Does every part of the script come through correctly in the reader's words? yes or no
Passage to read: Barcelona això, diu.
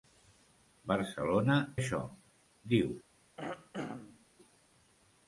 yes